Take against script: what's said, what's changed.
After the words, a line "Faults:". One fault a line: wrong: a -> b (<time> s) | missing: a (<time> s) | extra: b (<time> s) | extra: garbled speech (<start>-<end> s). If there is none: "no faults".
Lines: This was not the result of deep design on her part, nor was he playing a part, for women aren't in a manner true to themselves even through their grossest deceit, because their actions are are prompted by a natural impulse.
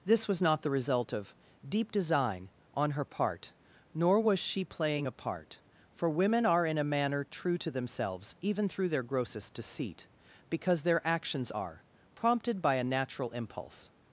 This was not the result of deep design on her part, nor was she playing a part, for women are in a manner true to themselves even through their grossest deceit, because their actions are prompted by a natural impulse.
Faults:
wrong: he -> she (4.4 s)
wrong: aren't -> are (6.4 s)
missing: are (11.9 s)